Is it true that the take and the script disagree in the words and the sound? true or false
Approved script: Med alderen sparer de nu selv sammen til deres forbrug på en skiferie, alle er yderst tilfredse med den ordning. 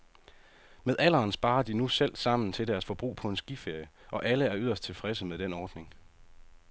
true